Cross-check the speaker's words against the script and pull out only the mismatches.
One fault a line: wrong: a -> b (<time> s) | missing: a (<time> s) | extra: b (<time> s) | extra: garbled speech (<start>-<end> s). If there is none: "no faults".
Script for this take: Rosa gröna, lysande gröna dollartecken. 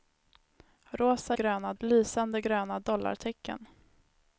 no faults